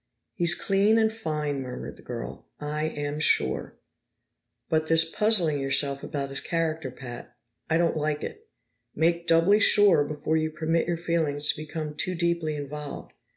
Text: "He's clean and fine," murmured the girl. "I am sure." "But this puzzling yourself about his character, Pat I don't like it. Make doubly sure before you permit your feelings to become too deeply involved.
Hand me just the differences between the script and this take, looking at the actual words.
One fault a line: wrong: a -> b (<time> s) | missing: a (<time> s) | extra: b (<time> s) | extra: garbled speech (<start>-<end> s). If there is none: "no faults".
no faults